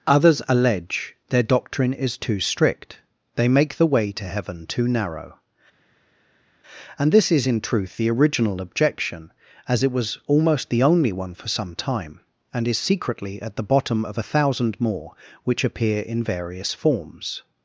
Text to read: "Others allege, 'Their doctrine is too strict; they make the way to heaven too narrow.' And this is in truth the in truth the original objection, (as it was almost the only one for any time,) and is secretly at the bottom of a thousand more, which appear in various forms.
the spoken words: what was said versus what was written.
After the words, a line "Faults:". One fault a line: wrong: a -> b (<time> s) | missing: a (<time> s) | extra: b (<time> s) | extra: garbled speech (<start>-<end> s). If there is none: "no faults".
"Others allege, 'Their doctrine is too strict; they make the way to heaven too narrow.' And this is in truth the original objection, (as it was almost the only one for some time,) and is secretly at the bottom of a thousand more, which appear in various forms.
Faults:
missing: in truth the (8.1 s)
wrong: any -> some (11.5 s)